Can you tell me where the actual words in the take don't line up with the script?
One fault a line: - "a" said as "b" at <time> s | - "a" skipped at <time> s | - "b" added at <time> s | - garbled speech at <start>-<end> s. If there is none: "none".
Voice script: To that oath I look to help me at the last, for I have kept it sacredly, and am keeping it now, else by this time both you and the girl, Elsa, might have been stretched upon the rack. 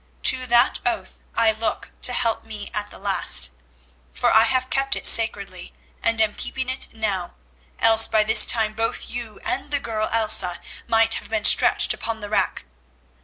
none